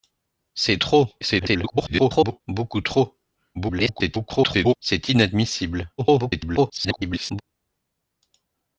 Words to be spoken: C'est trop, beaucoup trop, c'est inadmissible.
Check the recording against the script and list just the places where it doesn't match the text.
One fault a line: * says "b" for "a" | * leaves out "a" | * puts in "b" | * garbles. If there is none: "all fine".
* garbles
* garbles
* garbles